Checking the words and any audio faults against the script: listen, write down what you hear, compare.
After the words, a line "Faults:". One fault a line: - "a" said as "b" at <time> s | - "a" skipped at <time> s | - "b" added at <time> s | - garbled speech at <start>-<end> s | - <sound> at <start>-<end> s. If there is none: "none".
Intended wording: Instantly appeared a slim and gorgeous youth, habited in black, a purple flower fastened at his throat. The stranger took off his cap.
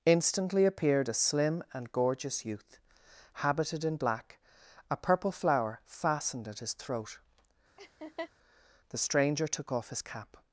Instantly appeared a slim and gorgeous youth, habited in black, a purple flower fastened at his throat. The stranger took off his cap.
Faults:
- laugh at 7.8-8.3 s